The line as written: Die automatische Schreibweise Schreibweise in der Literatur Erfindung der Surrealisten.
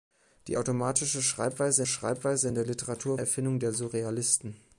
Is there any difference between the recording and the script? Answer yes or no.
no